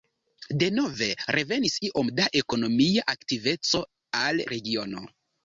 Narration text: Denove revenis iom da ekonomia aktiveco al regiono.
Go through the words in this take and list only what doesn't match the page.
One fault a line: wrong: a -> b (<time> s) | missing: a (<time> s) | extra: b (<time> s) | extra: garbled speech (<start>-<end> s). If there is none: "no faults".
no faults